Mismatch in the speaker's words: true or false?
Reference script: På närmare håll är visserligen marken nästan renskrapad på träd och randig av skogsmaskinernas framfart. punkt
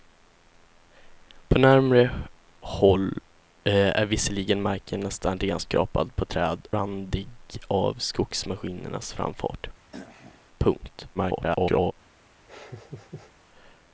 true